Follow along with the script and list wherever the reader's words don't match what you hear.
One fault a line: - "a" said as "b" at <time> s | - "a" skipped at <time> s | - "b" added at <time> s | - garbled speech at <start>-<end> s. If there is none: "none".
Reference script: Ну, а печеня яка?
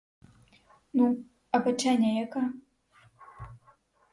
none